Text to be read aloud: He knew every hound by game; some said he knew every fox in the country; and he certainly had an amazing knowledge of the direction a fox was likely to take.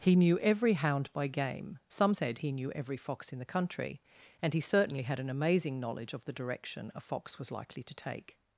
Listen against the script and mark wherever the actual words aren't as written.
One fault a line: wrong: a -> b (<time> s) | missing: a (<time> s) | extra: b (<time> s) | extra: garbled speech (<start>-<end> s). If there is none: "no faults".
no faults